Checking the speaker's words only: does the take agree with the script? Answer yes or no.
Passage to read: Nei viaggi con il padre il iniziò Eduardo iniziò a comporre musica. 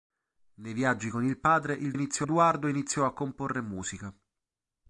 yes